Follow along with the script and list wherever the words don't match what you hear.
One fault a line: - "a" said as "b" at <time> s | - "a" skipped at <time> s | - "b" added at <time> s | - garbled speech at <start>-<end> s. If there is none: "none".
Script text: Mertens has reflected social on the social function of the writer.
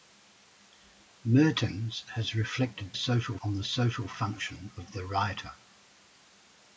none